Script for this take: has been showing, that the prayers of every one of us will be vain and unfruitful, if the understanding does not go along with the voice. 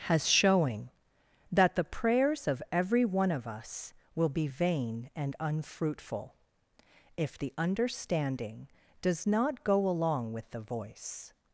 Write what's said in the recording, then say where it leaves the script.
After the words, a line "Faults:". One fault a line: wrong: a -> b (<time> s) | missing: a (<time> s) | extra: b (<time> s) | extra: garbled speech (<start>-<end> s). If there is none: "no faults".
has showing, that the prayers of every one of us will be vain and unfruitful, if the understanding does not go along with the voice.
Faults:
missing: been (0.3 s)